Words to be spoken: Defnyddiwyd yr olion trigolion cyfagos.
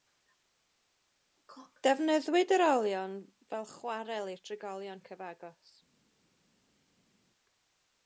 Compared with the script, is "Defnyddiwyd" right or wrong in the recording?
right